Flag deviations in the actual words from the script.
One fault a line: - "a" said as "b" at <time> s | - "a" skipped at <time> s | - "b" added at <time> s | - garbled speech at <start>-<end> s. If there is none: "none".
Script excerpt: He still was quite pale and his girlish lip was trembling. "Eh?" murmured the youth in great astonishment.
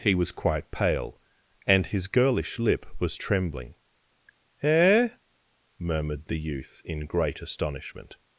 - "still" skipped at 0.1 s